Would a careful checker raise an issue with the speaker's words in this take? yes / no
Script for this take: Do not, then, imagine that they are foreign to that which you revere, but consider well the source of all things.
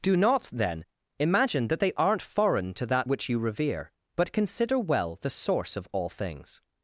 yes